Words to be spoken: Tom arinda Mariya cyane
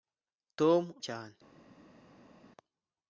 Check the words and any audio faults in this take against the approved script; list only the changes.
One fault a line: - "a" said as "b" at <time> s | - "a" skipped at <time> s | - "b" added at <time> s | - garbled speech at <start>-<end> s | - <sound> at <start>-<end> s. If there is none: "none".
- "arinda Mariya" skipped at 0.8 s